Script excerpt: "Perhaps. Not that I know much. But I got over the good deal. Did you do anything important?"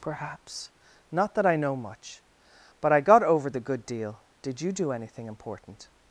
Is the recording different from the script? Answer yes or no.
no